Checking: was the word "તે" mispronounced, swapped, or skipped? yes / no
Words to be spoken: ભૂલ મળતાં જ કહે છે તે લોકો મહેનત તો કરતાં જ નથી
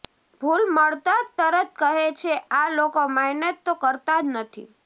yes